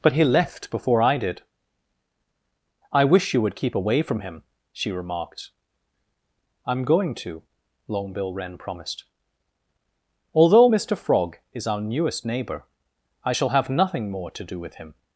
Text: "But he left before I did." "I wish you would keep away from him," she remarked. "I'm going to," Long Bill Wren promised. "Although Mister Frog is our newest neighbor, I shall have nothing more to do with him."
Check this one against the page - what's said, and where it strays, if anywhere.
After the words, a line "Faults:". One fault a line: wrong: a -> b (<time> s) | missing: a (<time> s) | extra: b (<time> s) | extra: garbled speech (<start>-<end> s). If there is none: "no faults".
"But he left before I did." "I wish you would keep away from him," she remarked. "I'm going to," Long Bill Wren promised. "Although Mister Frog is our newest neighbor, I shall have nothing more to do with him."
Faults:
no faults